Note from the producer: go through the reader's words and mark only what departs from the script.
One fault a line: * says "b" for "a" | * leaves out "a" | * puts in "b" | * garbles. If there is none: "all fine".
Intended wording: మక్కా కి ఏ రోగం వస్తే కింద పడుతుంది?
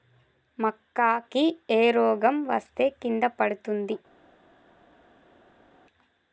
all fine